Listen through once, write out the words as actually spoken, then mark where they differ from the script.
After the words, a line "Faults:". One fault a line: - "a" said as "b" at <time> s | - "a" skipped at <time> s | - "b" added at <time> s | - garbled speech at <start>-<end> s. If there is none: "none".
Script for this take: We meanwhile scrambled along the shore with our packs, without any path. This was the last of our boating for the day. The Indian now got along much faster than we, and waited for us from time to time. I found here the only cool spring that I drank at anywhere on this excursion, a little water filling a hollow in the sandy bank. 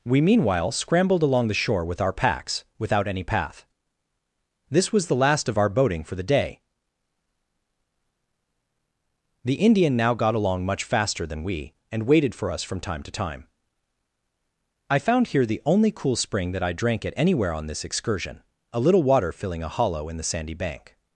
We meanwhile scrambled along the shore with our packs, without any path. This was the last of our boating for the day. The Indian now got along much faster than we, and waited for us from time to time. I found here the only cool spring that I drank at anywhere on this excursion, a little water filling a hollow in the sandy bank.
Faults:
none